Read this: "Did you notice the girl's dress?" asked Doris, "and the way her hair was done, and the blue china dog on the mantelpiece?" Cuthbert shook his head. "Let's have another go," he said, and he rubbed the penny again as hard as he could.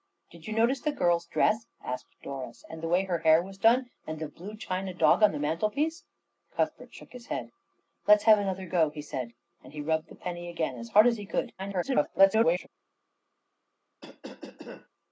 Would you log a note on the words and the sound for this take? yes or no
yes